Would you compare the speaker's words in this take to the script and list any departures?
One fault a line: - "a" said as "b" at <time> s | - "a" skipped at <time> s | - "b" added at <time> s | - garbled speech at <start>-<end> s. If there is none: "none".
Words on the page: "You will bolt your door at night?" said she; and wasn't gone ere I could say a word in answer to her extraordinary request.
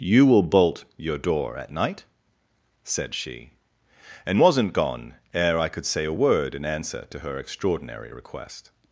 none